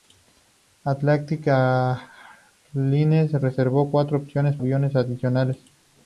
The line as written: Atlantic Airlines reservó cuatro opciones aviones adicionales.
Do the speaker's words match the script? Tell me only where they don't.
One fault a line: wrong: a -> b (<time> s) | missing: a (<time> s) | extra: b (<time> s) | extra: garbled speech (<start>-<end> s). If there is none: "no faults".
no faults